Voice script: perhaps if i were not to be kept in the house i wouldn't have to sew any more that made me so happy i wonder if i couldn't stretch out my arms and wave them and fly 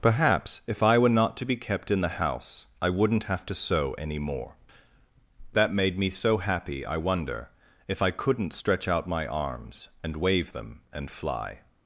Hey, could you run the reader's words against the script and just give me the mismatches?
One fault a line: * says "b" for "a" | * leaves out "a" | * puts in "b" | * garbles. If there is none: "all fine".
all fine